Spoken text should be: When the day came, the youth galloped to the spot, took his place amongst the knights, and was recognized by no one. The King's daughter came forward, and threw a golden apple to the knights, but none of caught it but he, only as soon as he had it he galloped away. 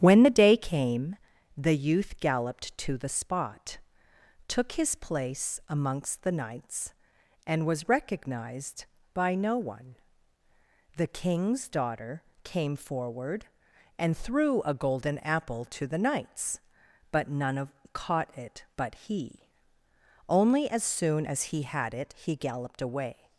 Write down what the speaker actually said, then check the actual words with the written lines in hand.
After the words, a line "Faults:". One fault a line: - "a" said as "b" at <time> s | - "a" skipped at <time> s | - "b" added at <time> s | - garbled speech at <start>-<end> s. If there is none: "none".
When the day came, the youth galloped to the spot, took his place amongst the knights, and was recognized by no one. The King's daughter came forward, and threw a golden apple to the knights, but none of caught it but he, only as soon as he had it he galloped away.
Faults:
none